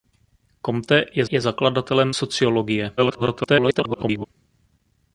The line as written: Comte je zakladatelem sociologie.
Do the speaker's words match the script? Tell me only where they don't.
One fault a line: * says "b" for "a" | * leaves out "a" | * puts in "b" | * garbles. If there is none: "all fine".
* puts in "je"
* garbles